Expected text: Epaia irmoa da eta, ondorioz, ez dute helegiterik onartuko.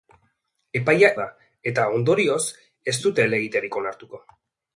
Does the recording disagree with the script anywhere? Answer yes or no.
yes